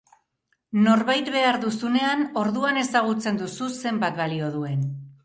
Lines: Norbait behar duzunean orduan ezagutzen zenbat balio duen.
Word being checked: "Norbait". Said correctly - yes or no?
yes